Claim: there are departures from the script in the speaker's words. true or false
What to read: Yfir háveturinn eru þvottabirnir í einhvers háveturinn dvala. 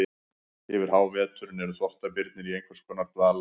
true